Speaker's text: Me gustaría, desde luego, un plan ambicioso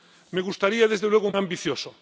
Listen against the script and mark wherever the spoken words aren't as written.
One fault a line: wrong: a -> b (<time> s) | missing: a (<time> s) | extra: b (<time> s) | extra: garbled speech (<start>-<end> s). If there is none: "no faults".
missing: plan (1.3 s)